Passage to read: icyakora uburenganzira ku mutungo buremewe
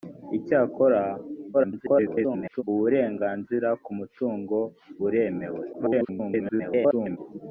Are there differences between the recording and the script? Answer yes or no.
yes